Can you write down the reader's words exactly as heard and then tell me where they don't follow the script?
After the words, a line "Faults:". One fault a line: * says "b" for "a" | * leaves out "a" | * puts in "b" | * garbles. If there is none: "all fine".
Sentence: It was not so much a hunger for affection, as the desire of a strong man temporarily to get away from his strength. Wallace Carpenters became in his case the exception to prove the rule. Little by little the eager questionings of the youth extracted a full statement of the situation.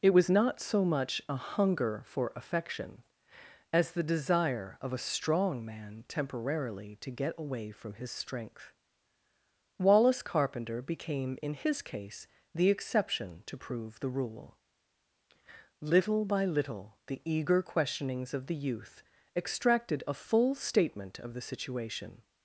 It was not so much a hunger for affection, as the desire of a strong man temporarily to get away from his strength. Wallace Carpenter became in his case the exception to prove the rule. Little by little the eager questionings of the youth extracted a full statement of the situation.
Faults:
* says "Carpenter" for "Carpenters"